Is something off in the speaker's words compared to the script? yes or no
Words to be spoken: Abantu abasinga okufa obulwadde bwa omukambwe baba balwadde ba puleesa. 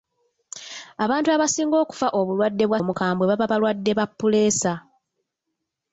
no